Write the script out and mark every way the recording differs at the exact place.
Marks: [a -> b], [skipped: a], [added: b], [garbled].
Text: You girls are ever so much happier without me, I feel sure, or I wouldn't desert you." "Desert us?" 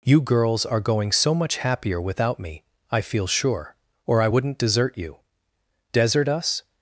You girls are [ever -> going] so much happier without me, I feel sure, or I wouldn't desert you." "Desert us?"